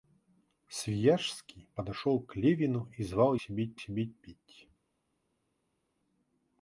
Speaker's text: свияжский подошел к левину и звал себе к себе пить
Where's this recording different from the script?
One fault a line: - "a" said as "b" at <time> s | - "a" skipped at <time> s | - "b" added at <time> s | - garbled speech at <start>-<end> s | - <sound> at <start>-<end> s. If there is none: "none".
none